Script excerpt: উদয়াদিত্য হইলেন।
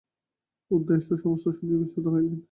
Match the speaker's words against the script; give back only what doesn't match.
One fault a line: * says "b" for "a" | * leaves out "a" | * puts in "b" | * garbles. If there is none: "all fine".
* puts in "সমস্ত শুনিয়া বিস্মিত"